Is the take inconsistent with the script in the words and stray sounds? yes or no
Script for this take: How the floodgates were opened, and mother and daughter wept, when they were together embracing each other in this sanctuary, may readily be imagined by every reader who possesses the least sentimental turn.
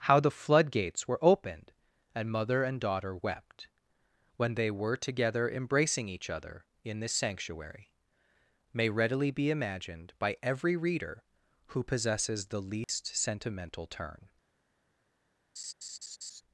yes